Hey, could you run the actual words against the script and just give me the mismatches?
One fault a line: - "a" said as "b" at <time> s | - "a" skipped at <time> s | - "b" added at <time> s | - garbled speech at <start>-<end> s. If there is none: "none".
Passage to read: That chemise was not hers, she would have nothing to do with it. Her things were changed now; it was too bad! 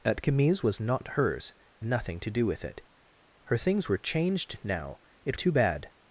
- "she would have" skipped at 1.5 s
- "was" skipped at 5.4 s